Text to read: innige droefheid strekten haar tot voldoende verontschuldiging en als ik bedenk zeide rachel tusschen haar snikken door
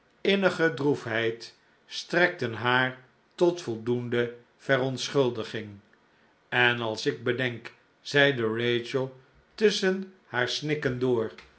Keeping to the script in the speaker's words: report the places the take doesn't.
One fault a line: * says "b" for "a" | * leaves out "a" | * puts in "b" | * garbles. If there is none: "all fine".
all fine